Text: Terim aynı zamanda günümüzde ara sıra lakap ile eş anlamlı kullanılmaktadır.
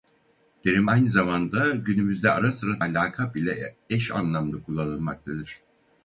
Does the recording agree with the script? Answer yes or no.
yes